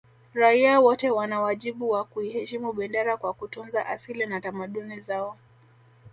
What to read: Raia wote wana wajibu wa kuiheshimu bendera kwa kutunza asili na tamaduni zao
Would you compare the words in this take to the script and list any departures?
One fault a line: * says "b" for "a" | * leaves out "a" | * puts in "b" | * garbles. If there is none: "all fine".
all fine